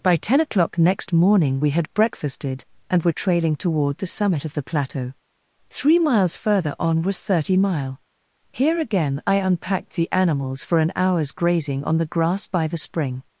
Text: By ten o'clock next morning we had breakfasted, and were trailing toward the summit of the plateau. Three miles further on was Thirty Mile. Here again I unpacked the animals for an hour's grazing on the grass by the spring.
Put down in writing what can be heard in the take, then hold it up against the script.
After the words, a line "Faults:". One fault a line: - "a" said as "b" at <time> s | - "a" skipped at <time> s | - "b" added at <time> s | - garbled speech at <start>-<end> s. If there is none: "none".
By ten o'clock next morning we had breakfasted, and were trailing toward the summit of the plateau. Three miles further on was Thirty Mile. Here again I unpacked the animals for an hour's grazing on the grass by the spring.
Faults:
none